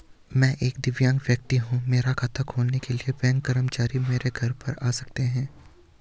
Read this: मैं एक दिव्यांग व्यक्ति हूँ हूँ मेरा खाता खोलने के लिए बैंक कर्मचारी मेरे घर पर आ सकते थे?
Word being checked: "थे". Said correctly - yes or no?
no